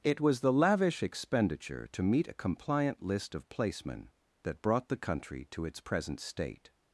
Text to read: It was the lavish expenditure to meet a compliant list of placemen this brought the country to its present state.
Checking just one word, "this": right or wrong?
wrong